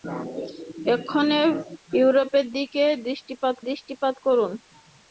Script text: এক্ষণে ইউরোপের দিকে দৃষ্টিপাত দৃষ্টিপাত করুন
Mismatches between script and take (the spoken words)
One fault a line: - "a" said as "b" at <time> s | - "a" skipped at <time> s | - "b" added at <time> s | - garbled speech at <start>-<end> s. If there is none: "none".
none